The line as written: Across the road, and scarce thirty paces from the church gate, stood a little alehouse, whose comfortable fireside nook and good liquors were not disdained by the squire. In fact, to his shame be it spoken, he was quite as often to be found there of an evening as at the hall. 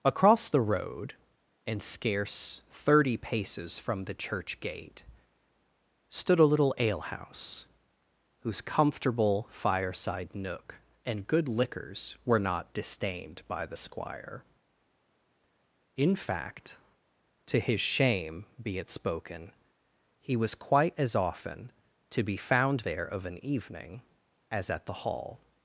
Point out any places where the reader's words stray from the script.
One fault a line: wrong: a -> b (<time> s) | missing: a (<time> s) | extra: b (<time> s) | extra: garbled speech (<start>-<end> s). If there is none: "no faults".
no faults